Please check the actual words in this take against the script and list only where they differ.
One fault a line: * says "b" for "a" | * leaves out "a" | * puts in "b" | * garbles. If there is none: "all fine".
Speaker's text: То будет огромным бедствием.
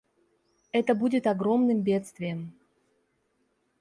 * says "Это" for "То"